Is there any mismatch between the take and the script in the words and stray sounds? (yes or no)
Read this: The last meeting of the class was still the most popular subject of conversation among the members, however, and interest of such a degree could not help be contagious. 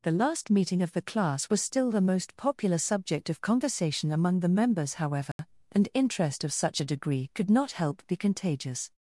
yes